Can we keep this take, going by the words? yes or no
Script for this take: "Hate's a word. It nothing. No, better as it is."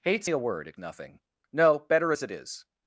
yes